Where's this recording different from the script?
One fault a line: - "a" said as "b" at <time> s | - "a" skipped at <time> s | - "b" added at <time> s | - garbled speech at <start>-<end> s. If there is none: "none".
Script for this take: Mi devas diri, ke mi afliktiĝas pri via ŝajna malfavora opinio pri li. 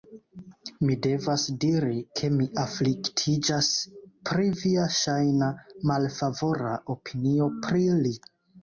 none